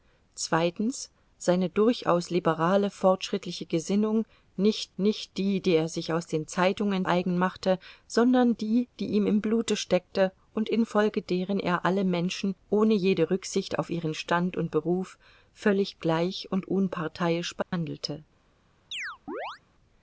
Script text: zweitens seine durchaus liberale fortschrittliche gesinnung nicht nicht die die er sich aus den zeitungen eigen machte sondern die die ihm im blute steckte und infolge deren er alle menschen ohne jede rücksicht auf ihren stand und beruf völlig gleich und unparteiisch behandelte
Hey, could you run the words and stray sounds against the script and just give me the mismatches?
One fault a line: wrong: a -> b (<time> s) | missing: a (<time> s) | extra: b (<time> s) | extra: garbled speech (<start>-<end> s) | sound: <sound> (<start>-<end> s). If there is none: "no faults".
sound: dropout (17.6-17.7 s)
sound: chirp (18.9-19.6 s)